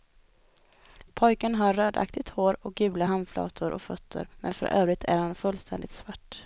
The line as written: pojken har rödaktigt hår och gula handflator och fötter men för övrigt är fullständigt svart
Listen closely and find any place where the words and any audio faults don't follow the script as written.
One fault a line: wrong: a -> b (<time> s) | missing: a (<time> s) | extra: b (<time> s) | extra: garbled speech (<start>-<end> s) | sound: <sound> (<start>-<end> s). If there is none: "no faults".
extra: han (5.2 s)